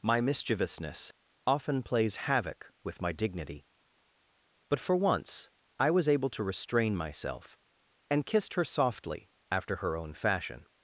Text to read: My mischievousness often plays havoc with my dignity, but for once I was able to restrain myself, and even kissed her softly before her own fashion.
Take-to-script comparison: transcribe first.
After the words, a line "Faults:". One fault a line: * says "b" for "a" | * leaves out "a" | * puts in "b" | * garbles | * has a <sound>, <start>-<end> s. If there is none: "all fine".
My mischievousness often plays havoc with my dignity, but for once I was able to restrain myself, and kissed her softly after her own fashion.
Faults:
* leaves out "even"
* says "after" for "before"